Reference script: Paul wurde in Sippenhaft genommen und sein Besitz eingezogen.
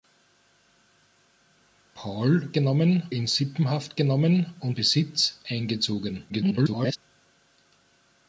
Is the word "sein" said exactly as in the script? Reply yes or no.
no